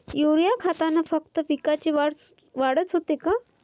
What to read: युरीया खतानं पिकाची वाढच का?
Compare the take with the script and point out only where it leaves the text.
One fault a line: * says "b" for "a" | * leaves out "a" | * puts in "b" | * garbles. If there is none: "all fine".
* puts in "फक्त"
* puts in "होते"